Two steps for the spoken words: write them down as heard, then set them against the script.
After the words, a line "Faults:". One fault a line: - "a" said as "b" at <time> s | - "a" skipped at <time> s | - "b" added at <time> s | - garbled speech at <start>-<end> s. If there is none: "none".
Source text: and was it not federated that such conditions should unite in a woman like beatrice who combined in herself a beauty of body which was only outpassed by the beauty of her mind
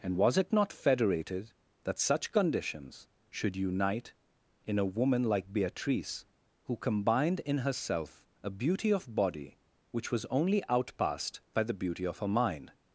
and was it not federated that such conditions should unite in a woman like beatrice who combined in herself a beauty of body which was only outpassed by the beauty of her mind
Faults:
none